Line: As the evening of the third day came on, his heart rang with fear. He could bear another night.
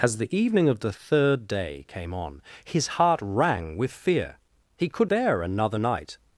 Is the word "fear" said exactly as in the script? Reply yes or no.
yes